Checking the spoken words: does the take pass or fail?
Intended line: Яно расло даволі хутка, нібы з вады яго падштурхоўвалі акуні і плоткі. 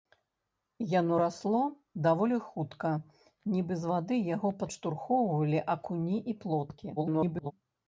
fail